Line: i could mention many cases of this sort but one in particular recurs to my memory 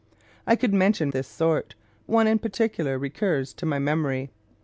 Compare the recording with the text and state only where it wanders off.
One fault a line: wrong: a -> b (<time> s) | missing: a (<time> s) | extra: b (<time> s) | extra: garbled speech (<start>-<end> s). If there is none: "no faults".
missing: many cases of (1.1 s)
missing: but (1.7 s)